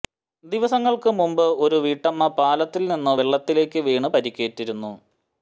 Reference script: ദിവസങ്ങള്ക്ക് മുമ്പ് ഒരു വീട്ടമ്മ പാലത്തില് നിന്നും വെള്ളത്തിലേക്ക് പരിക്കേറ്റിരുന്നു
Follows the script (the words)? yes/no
no